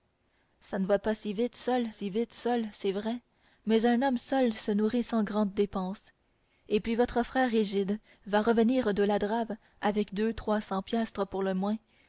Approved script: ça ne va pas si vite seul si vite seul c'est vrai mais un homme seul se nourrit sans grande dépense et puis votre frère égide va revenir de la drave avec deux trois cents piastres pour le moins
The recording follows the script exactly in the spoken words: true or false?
true